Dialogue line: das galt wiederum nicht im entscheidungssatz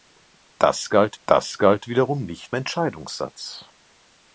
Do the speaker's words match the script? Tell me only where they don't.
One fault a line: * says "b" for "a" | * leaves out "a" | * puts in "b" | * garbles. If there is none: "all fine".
* puts in "das galt"
* leaves out "im"